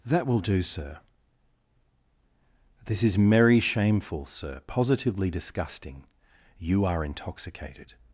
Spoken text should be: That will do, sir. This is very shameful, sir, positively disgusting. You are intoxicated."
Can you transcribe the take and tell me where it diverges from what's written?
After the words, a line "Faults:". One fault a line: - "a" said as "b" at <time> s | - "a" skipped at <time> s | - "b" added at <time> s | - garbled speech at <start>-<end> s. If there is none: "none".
That will do, sir. This is merry shameful, sir, positively disgusting. You are intoxicated."
Faults:
- "very" said as "merry" at 3.2 s